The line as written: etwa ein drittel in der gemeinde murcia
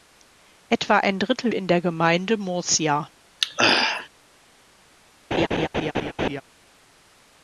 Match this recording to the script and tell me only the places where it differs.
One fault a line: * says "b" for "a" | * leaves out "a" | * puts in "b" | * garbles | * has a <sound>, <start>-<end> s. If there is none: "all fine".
* has a throat clearing, 3.4-4.1 s
* has a laugh, 5.3-6.4 s